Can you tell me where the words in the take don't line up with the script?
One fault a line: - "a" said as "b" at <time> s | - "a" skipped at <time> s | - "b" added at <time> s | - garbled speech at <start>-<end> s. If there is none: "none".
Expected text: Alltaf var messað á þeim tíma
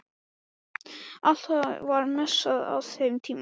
none